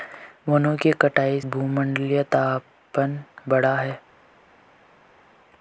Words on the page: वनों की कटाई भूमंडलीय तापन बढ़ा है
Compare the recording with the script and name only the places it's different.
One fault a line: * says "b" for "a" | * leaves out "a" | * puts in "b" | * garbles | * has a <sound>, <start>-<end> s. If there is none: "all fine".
all fine